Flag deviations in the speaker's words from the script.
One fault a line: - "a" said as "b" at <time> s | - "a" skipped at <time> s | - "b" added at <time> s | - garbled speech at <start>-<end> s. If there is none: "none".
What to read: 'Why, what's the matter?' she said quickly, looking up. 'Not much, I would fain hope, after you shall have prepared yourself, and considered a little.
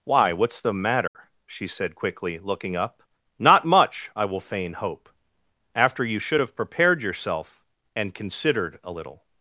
- "would" said as "will" at 4.2 s
- "shall" said as "should" at 6.2 s